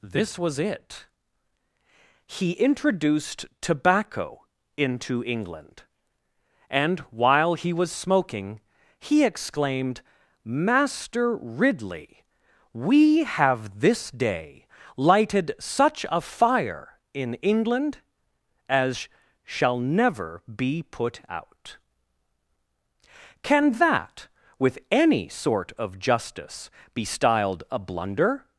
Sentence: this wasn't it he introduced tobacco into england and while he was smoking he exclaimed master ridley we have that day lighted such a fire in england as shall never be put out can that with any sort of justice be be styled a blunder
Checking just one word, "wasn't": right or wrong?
wrong